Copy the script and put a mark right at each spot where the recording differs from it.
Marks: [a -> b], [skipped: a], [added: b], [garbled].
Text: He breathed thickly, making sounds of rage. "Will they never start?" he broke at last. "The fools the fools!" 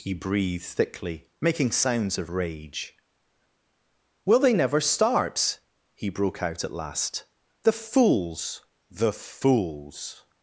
He breathed thickly, making sounds of rage. "Will they never start?" he broke [added: out] at last. "The fools the fools!"